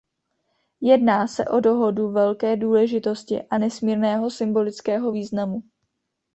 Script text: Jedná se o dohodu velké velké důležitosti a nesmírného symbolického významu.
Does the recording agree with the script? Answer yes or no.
no